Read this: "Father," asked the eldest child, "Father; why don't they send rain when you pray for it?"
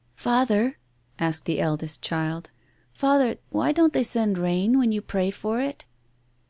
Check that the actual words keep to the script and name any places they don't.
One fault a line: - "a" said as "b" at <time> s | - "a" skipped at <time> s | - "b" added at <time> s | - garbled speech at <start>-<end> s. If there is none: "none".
none